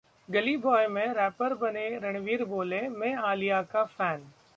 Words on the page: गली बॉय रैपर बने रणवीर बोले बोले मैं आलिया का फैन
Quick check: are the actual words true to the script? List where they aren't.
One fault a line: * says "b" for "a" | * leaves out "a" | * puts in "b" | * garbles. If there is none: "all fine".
* puts in "में"
* leaves out "बोले"